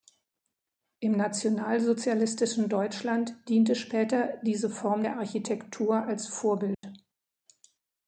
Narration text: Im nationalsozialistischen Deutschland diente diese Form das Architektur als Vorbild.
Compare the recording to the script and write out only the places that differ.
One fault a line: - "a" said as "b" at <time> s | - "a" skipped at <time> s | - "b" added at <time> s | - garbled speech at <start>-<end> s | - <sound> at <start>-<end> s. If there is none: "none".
- "später" added at 3.8 s
- "das" said as "der" at 5.0 s
- dropout at 6.7-6.8 s